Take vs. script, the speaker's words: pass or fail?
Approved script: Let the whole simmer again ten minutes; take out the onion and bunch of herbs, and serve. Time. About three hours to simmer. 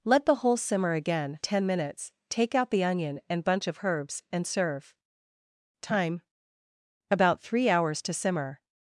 pass